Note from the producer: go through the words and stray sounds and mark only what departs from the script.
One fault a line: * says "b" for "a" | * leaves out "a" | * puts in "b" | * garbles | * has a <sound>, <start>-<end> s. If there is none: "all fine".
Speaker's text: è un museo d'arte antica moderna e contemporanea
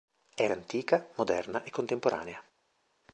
* leaves out "un museo d'arte"